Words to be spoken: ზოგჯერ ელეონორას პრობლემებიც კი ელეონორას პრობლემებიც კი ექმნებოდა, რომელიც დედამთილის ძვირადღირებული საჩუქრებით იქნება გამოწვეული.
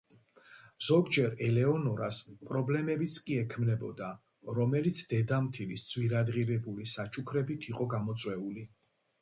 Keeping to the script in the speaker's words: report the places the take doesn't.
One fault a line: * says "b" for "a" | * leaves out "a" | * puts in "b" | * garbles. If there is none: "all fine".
* leaves out "ელეონორას პრობლემებიც კი"
* says "იყო" for "იქნება"